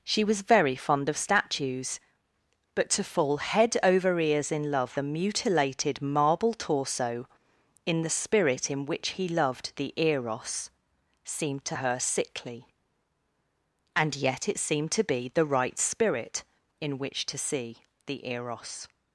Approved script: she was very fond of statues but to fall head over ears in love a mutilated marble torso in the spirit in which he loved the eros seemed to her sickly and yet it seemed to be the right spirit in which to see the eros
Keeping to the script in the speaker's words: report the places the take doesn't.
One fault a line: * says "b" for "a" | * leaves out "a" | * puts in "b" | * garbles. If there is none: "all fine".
all fine